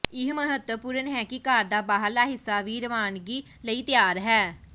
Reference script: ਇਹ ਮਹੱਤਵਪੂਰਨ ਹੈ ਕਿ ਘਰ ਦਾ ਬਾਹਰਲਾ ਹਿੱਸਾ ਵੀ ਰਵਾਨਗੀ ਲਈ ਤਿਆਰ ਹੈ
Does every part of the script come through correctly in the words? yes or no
yes